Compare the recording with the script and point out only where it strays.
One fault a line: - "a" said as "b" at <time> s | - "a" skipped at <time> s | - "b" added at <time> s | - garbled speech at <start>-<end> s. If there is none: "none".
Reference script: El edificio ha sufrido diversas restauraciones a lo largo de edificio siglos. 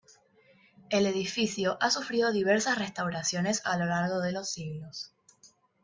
- "edificio" said as "los" at 4.3 s